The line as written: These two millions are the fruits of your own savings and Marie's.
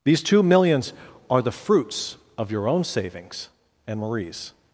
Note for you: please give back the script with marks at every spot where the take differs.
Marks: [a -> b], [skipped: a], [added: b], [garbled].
These two millions are the fruits of your own savings and Marie's.